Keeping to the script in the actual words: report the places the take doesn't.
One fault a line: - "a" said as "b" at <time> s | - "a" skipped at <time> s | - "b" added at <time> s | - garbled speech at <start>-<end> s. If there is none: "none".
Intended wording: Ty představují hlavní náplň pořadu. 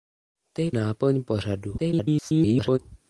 - "představují hlavní" skipped at 0.7 s
- garbled speech at 1.8-2.8 s